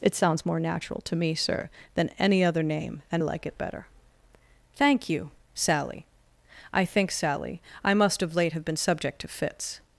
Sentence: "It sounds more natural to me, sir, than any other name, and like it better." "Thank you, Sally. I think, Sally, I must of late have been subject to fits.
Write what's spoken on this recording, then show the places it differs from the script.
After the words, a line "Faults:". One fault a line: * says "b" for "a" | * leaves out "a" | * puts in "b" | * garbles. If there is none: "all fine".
"It sounds more natural to me, sir, than any other name, and like it better." "Thank you, Sally. I think, Sally, I must of late have been subject to fits.
Faults:
all fine